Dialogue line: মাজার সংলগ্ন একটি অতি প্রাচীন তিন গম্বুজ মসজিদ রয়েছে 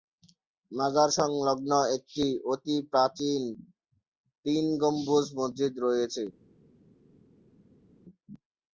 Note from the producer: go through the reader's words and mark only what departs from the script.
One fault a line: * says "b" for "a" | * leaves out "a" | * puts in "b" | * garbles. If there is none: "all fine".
all fine